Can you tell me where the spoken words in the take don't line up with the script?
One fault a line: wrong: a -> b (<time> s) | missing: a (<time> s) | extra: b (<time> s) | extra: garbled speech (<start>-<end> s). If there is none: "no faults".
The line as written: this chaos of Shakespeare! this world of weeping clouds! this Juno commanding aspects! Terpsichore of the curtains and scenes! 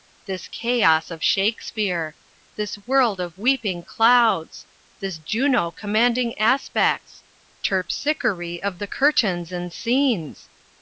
no faults